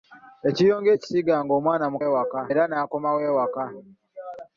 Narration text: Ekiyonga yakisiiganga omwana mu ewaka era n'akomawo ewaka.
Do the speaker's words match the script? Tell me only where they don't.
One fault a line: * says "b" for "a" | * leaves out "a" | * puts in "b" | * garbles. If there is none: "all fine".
all fine